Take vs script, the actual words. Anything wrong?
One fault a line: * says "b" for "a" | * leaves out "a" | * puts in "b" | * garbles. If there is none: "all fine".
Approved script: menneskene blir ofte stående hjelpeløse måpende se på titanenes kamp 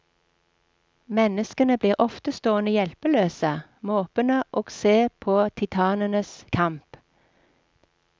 * puts in "og"